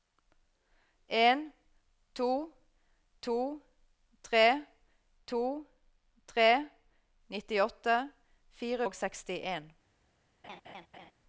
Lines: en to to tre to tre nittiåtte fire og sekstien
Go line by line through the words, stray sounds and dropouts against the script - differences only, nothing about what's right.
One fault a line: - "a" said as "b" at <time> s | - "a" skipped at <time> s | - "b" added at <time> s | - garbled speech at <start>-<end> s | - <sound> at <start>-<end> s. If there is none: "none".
- laugh at 10.4-11.1 s